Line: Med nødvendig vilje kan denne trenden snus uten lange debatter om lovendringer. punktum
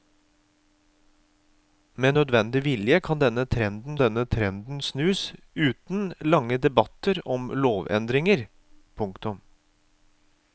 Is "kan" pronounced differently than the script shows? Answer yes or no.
no